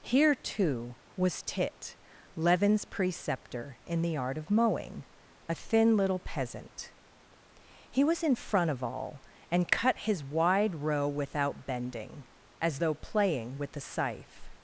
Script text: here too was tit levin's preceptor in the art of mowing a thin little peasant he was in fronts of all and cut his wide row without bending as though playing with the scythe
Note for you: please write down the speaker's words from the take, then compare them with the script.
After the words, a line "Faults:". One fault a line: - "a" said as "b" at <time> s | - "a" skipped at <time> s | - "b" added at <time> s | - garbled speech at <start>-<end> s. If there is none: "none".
here too was tit levin's preceptor in the art of mowing a thin little peasant he was in front of all and cut his wide row without bending as though playing with the scythe
Faults:
- "fronts" said as "front" at 8.3 s